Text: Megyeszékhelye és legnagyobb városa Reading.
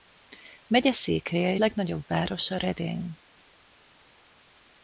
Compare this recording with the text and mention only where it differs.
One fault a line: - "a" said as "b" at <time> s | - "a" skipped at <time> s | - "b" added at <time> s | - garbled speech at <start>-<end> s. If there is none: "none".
- "és" skipped at 1.6 s